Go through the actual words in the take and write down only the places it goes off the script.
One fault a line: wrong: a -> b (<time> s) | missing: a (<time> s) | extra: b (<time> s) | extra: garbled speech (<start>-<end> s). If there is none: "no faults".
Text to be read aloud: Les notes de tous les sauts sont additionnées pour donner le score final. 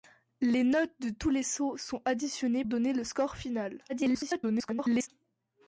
missing: pour (2.6 s)
extra: garbled speech (3.9-5.1 s)